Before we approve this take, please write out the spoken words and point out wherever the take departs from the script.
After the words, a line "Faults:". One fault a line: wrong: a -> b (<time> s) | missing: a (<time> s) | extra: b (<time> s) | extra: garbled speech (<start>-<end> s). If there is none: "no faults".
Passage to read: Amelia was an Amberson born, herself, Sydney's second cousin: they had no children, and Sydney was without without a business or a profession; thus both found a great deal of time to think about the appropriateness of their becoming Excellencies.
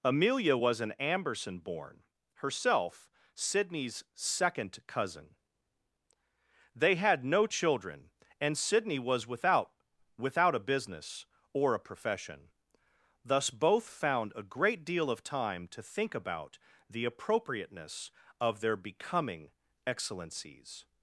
Amelia was an Amberson born, herself, Sydney's second cousin: they had no children, and Sydney was without without a business or a profession; thus both found a great deal of time to think about the appropriateness of their becoming Excellencies.
Faults:
no faults